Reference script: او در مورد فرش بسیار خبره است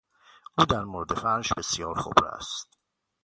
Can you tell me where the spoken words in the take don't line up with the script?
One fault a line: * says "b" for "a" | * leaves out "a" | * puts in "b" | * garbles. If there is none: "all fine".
all fine